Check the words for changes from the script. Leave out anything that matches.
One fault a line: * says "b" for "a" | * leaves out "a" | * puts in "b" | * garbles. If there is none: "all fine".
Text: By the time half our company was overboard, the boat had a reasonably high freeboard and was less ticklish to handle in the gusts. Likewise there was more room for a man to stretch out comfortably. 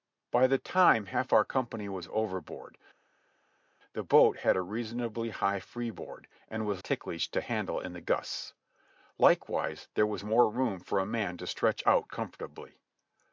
* leaves out "less"